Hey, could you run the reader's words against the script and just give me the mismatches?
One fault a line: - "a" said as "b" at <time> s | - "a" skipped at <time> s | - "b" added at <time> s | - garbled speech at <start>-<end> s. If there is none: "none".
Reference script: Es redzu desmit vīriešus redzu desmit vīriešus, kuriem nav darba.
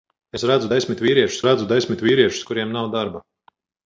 none